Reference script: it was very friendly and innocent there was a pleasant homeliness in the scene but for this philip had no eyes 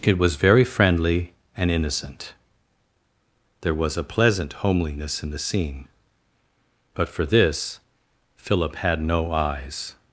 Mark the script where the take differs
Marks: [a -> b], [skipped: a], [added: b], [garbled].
it was very friendly and innocent there was a pleasant homeliness in the scene but for this philip had no eyes